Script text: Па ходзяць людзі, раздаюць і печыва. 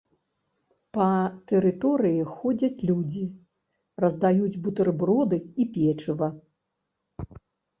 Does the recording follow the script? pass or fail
fail